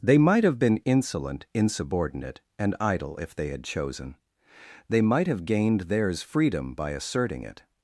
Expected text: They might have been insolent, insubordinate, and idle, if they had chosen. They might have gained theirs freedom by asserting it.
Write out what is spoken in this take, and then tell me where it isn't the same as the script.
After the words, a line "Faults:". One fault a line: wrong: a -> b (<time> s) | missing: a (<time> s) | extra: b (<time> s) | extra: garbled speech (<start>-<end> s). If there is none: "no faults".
They might have been insolent, insubordinate, and idle, if they had chosen. They might have gained theirs freedom by asserting it.
Faults:
no faults